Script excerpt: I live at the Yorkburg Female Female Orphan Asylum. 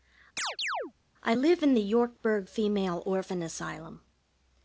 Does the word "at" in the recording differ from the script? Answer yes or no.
yes